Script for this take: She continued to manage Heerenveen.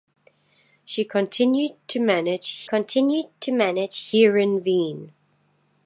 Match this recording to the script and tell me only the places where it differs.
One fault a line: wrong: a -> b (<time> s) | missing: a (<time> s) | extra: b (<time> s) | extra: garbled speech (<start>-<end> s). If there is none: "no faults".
extra: continued to manage (2.6 s)